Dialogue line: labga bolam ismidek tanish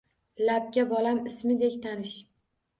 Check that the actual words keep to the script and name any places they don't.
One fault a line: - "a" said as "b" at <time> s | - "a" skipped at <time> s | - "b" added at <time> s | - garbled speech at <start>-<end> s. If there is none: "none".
none